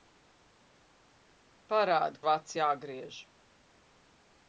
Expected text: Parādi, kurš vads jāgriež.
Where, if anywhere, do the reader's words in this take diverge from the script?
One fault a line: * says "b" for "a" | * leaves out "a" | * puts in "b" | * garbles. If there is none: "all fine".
* leaves out "kurš"